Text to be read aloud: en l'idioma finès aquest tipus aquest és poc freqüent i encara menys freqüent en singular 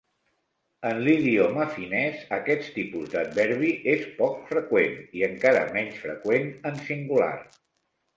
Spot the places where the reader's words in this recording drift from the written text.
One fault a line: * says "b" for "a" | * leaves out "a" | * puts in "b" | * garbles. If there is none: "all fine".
* says "d'adverbi" for "aquest"